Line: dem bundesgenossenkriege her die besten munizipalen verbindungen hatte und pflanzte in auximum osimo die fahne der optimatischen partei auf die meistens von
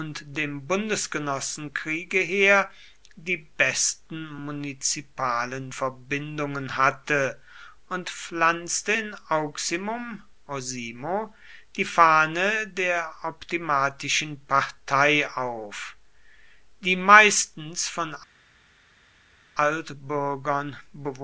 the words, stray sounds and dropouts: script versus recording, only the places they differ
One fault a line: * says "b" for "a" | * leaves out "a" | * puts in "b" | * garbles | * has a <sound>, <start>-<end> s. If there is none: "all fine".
all fine